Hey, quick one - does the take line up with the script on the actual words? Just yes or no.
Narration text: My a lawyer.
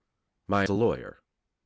yes